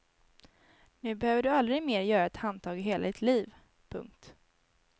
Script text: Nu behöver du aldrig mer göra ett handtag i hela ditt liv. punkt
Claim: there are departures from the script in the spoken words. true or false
false